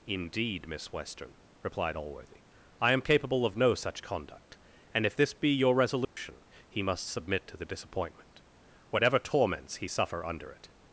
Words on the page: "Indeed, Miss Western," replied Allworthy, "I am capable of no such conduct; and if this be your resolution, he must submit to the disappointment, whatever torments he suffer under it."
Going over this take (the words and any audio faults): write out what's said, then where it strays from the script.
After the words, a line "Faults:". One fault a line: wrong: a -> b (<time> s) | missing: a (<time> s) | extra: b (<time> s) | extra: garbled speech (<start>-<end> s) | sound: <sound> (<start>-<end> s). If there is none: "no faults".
"Indeed, Miss Western," replied Allworthy, "I am capable of no such conduct; and if this be your resolution, he must submit to the disappointment, whatever torments he suffer under it."
Faults:
sound: dropout (6.0-6.2 s)